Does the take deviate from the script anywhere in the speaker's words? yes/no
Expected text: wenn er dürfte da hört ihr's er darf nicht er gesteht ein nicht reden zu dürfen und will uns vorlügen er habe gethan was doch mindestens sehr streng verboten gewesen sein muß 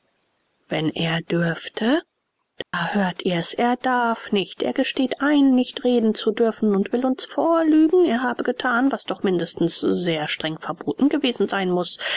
no